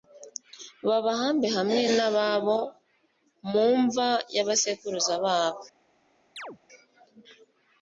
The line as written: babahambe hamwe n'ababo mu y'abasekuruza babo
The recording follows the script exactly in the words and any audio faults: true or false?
false